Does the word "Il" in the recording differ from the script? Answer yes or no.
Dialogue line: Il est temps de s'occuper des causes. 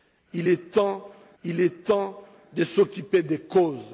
no